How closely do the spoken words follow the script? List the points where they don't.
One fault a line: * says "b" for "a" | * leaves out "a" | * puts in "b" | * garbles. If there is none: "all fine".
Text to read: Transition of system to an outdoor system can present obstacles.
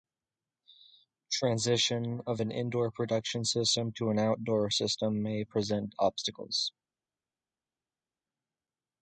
* puts in "an indoor production"
* says "may" for "can"